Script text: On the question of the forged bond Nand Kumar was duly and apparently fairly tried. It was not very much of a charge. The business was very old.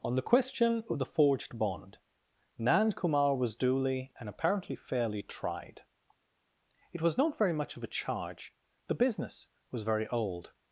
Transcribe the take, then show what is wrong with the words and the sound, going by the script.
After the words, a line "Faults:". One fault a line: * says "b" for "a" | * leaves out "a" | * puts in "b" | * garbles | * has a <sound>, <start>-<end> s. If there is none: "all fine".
On the question of the forged bond Nand Kumar was duly and apparently fairly tried. It was not very much of a charge. The business was very old.
Faults:
all fine